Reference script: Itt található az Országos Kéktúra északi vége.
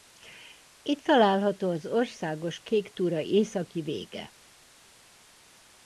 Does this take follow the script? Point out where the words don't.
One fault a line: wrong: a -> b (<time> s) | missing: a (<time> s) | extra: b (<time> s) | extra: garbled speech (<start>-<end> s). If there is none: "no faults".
no faults